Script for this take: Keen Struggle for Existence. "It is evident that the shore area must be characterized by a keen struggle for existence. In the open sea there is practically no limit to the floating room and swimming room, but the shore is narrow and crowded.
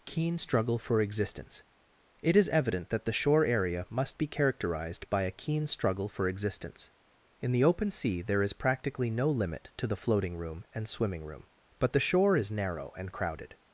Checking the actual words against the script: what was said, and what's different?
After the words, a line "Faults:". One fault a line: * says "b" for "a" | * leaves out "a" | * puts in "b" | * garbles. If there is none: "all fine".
Keen Struggle for Existence. "It is evident that the shore area must be characterized by a keen struggle for existence. In the open sea there is practically no limit to the floating room and swimming room, but the shore is narrow and crowded.
Faults:
all fine